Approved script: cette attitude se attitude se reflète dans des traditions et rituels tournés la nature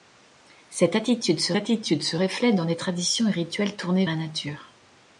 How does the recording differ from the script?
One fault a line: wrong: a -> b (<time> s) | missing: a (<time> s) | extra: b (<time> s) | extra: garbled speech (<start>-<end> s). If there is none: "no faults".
no faults